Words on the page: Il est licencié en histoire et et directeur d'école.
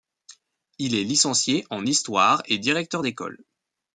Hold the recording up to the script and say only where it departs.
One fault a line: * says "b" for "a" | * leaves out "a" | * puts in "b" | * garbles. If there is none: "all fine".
* leaves out "et"